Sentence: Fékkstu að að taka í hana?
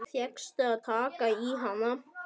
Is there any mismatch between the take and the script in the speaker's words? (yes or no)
yes